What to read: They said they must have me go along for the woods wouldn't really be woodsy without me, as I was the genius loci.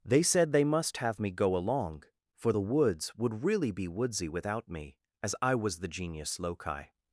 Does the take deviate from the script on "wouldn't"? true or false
true